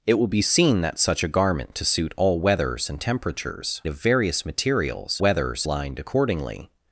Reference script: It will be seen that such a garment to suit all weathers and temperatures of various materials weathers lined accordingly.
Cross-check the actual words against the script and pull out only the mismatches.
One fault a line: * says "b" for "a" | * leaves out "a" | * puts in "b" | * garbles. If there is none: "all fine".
all fine